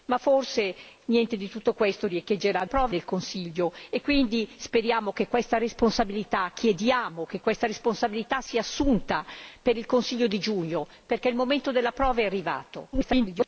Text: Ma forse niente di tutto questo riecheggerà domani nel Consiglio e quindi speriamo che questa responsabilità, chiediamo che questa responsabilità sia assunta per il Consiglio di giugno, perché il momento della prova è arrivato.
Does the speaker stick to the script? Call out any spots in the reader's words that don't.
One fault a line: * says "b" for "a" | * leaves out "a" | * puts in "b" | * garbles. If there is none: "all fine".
* says "prova" for "domani"
* garbles